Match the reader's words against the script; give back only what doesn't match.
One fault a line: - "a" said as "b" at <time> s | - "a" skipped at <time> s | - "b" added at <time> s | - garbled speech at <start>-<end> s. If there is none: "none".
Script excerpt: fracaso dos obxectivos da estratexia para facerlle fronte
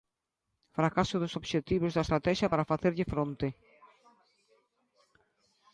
none